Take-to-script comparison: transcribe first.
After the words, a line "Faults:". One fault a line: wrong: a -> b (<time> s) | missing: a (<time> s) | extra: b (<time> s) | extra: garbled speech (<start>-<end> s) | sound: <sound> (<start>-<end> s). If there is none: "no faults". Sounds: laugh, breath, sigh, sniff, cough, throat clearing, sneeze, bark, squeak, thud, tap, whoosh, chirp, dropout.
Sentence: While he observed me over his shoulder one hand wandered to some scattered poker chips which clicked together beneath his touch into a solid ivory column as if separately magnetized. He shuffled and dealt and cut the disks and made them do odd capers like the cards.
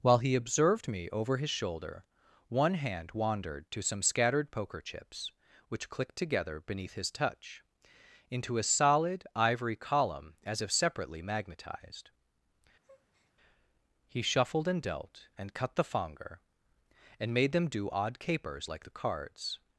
While he observed me over his shoulder one hand wandered to some scattered poker chips which clicked together beneath his touch into a solid ivory column as if separately magnetized. He shuffled and dealt and cut the fonger and made them do odd capers like the cards.
Faults:
sound: breath (12.8-13.3 s)
wrong: disks -> fonger (15.8 s)